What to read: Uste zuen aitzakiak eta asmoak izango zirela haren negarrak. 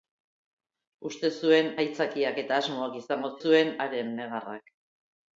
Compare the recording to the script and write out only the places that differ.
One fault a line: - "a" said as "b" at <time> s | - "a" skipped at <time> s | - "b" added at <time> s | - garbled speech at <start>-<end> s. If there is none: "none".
- "zirela" said as "zuen" at 3.4 s